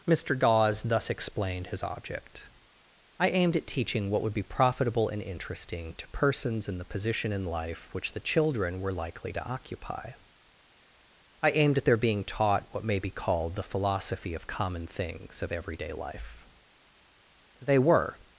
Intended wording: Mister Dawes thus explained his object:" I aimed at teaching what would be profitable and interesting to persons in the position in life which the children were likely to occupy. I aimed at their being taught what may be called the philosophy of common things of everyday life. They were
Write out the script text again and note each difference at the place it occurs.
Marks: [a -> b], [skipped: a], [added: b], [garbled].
Mister Dawes thus explained his object:" I aimed at teaching what would be profitable and interesting to persons in the position in life which the children were likely to occupy. I aimed at their being taught what may be called the philosophy of common things of everyday life. They were